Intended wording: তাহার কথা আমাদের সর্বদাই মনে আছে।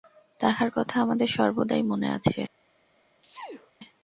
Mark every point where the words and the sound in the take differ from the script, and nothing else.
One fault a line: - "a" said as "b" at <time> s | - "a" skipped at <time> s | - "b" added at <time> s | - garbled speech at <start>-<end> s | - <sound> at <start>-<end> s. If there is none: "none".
- sneeze at 3.2-3.7 s